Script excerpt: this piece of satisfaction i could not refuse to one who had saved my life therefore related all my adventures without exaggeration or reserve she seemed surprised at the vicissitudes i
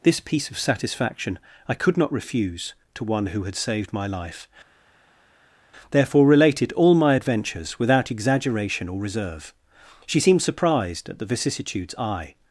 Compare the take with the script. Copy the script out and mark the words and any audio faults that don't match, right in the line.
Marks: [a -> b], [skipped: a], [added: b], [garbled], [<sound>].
this piece of satisfaction i could not refuse to one who had saved my life therefore related all my adventures without exaggeration or reserve she seemed surprised at the vicissitudes i